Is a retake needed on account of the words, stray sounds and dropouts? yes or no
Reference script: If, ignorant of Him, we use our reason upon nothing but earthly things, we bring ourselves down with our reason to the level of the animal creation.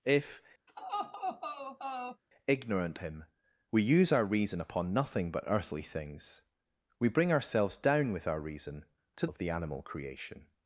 yes